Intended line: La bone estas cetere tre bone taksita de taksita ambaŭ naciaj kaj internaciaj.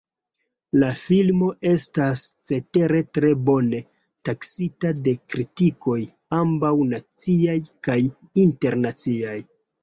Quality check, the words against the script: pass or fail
fail